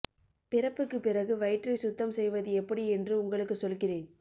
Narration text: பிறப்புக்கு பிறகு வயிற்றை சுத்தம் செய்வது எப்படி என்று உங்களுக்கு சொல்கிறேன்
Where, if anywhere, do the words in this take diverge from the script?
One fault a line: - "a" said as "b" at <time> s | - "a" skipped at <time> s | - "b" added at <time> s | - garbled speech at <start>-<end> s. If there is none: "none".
none